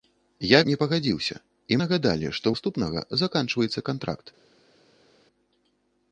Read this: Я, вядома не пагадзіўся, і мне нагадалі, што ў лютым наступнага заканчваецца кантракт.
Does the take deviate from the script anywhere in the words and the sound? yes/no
yes